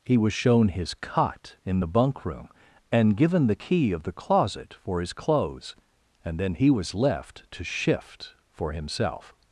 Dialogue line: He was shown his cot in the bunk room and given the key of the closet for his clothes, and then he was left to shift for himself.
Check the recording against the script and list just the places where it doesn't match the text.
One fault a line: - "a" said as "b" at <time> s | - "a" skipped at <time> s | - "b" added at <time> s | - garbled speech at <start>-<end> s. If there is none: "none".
none